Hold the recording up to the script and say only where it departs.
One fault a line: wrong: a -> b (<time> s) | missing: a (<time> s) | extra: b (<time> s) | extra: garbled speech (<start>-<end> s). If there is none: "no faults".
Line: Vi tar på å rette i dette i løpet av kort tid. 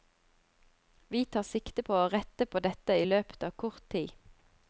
extra: sikte (1.4 s)
wrong: i -> på (2.5 s)